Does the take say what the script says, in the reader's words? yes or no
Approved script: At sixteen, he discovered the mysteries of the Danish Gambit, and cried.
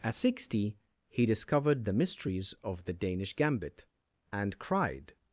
no